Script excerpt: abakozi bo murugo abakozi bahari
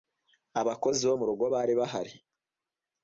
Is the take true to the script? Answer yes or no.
no